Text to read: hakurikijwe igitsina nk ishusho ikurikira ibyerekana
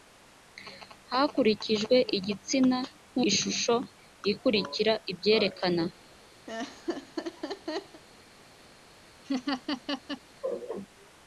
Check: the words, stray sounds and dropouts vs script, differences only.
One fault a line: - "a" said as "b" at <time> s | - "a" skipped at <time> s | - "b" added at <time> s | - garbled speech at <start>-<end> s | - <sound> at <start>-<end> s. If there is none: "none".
- laugh at 6.5-8.0 s
- laugh at 9.2-10.2 s